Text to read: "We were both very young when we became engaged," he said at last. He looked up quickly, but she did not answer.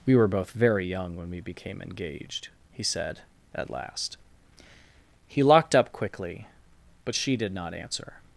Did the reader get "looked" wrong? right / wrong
wrong